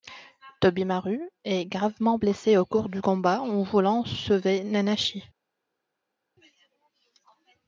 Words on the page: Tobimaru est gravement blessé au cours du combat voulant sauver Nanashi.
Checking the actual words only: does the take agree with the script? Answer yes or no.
no